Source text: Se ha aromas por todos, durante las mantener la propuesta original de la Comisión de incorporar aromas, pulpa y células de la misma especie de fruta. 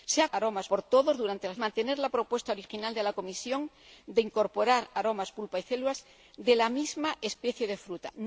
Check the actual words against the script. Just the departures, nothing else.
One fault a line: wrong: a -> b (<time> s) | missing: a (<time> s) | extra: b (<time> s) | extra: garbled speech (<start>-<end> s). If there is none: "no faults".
no faults